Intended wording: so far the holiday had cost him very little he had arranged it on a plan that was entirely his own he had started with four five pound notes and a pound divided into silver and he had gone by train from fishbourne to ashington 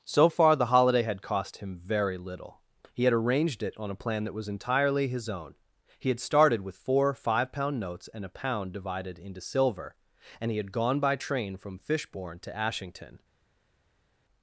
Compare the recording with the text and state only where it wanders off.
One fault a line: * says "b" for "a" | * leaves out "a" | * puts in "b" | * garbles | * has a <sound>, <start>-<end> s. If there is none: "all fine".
all fine